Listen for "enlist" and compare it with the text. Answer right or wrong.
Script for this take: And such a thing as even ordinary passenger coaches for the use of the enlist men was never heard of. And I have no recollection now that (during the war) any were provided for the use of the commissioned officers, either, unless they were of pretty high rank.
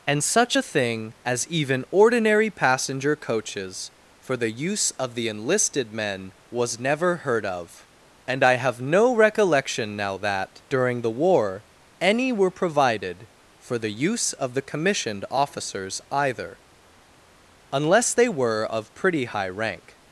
wrong